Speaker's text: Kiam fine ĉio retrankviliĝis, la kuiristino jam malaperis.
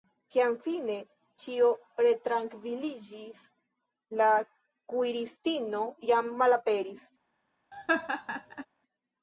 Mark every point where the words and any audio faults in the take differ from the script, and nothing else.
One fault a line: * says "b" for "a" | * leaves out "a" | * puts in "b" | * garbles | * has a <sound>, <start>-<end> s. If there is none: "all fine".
* has a laugh, 7.7-8.7 s